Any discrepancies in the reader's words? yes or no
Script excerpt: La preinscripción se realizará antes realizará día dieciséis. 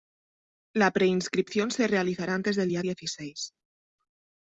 yes